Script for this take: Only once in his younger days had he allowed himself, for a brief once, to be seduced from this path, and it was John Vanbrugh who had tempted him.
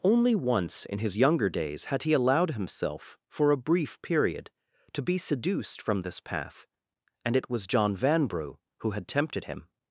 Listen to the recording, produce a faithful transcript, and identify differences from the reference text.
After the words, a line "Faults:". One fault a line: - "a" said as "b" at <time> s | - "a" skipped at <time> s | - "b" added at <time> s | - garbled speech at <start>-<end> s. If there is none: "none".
Only once in his younger days had he allowed himself, for a brief period, to be seduced from this path, and it was John Vanbrugh who had tempted him.
Faults:
- "once" said as "period" at 4.0 s